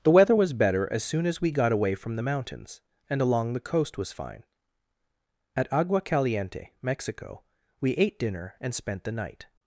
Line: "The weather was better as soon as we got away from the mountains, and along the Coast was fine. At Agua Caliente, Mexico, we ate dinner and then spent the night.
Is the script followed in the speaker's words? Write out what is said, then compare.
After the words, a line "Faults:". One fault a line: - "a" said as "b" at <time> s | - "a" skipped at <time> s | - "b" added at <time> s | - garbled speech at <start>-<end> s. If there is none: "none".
"The weather was better as soon as we got away from the mountains, and along the Coast was fine. At Agua Caliente, Mexico, we ate dinner and spent the night.
Faults:
- "then" skipped at 8.7 s